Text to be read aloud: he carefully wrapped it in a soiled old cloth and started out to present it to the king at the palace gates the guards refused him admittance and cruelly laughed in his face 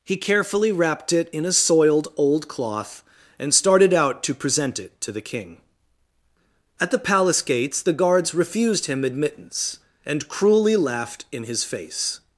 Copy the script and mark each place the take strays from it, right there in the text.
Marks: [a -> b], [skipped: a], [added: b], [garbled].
he carefully wrapped it in a soiled old cloth and started out to present it to the king at the palace gates the guards refused him admittance and cruelly laughed in his face